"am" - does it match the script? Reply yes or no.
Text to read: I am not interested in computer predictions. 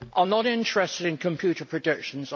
yes